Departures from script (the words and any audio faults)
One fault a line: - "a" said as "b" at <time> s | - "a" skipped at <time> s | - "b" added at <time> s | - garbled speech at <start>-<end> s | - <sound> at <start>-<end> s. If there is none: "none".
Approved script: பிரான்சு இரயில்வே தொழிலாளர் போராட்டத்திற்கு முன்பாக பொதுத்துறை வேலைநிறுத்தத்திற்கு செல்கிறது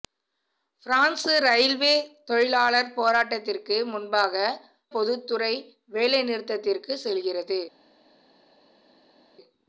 none